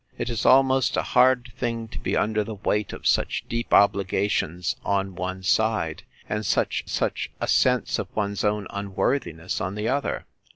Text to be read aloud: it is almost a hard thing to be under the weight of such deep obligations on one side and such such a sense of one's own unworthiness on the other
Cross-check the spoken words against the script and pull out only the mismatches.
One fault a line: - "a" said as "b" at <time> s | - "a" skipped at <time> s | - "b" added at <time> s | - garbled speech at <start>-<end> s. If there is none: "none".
none